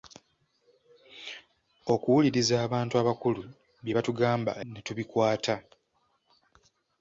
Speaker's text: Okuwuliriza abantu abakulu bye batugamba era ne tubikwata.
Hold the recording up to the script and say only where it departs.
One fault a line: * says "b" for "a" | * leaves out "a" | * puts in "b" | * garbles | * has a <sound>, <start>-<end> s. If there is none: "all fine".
* leaves out "era"